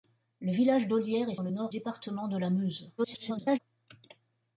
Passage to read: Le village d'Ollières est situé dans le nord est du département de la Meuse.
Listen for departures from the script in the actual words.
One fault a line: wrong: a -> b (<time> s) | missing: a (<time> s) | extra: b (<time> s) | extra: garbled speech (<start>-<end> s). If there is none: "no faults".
missing: situé dans (1.4 s)
missing: est du (1.7 s)
extra: garbled speech (3.0-3.6 s)